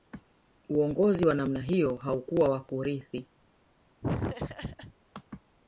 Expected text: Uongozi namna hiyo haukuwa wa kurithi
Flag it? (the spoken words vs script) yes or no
yes